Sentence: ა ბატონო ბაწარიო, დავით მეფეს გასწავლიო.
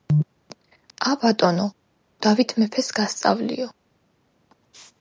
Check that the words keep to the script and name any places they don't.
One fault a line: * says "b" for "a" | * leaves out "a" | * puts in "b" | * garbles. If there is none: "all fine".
* leaves out "ბაწარიო"